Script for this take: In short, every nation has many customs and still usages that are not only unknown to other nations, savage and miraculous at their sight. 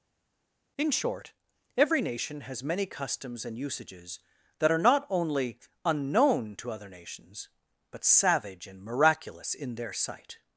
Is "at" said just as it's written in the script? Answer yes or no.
no